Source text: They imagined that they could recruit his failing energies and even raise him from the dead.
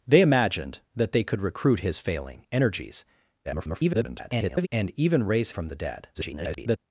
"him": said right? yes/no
no